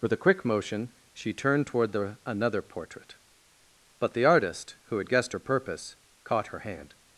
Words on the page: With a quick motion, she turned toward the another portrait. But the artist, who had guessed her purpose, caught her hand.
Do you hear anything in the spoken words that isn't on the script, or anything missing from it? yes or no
no